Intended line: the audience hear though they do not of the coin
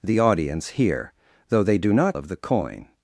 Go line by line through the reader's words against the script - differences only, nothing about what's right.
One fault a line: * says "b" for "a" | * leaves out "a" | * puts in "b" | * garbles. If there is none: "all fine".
all fine